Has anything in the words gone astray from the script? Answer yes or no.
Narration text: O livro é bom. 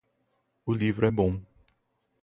no